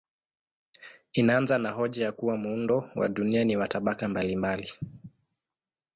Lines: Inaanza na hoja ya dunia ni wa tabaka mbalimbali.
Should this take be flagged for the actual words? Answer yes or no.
yes